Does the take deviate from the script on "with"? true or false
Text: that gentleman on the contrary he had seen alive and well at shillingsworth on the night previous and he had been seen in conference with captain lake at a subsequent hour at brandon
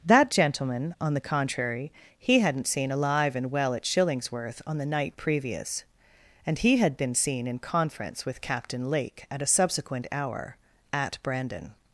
false